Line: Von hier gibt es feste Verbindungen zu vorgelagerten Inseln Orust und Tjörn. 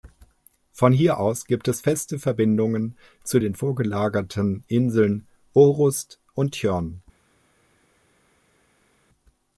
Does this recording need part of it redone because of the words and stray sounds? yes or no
yes